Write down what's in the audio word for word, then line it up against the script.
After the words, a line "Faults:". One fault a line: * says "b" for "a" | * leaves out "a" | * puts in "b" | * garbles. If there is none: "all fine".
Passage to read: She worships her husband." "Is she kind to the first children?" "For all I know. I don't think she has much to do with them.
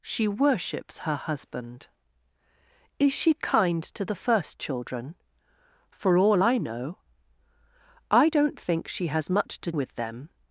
She worships her husband." "Is she kind to the first children?" "For all I know. I don't think she has much to with them.
Faults:
* leaves out "do"